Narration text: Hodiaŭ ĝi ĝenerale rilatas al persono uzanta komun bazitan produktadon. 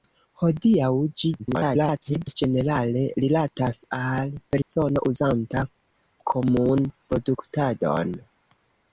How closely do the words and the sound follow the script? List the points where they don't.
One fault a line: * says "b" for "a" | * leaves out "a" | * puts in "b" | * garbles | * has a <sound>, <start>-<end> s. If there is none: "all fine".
* garbles
* has a dropout, 4.6-4.7 s
* leaves out "bazitan"